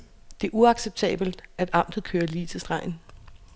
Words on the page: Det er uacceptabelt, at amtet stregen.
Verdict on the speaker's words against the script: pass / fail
fail